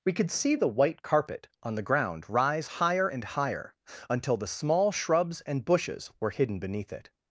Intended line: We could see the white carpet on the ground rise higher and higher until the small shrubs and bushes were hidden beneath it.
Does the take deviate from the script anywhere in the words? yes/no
no